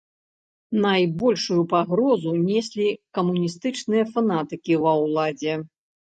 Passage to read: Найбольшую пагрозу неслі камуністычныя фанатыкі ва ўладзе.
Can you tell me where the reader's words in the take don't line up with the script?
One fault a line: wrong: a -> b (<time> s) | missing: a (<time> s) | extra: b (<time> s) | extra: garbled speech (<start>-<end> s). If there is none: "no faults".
no faults